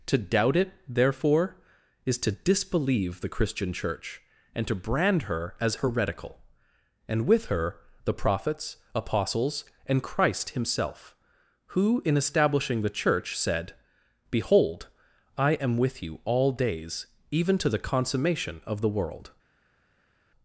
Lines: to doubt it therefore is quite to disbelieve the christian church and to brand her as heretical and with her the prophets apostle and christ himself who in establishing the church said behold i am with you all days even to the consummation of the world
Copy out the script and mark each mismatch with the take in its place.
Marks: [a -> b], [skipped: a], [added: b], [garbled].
to doubt it therefore is [skipped: quite] to disbelieve the christian church and to brand her as heretical and with her the prophets [apostle -> apostles] and christ himself who in establishing the church said behold i am with you all days even to the consummation of the world